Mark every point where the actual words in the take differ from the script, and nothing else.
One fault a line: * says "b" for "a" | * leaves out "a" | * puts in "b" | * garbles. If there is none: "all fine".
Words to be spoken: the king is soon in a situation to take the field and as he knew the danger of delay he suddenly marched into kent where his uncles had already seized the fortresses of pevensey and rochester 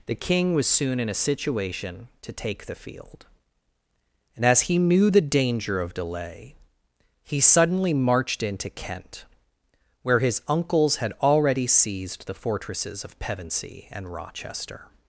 * says "was" for "is"